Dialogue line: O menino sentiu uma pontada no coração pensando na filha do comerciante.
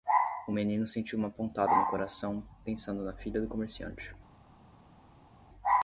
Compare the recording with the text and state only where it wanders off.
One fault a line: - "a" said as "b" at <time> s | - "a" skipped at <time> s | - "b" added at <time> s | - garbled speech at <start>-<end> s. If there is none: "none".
none